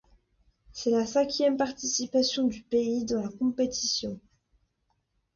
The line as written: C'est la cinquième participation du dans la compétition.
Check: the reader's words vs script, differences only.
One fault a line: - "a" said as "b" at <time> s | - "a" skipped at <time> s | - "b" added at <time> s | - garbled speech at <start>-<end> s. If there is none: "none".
- "pays" added at 2.6 s